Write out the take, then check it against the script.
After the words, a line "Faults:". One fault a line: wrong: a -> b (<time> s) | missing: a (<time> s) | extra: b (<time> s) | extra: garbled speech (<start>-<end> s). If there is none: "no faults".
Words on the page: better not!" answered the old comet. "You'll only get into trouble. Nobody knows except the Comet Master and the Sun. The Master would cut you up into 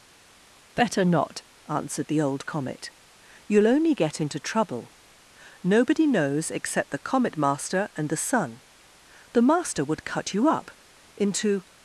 better not!" answered the old comet. "You'll only get into trouble. Nobody knows except the Comet Master and the Sun. The Master would cut you up into
Faults:
no faults